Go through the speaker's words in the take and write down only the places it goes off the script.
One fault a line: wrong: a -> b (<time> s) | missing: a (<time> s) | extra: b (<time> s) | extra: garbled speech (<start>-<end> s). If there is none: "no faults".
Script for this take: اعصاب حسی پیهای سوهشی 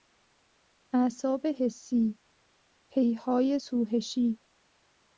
no faults